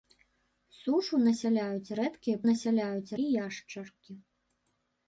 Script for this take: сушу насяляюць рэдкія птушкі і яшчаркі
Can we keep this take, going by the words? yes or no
no